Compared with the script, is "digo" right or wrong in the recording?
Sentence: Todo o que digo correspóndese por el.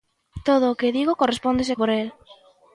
right